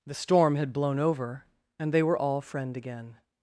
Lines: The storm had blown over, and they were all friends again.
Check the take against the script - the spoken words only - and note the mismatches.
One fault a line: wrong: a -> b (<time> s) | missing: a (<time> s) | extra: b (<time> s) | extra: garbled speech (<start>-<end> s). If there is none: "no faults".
wrong: friends -> friend (2.4 s)